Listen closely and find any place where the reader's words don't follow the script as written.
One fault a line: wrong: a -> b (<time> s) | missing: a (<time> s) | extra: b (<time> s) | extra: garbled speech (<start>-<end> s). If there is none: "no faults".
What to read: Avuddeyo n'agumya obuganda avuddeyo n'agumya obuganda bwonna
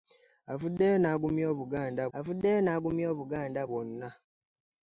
no faults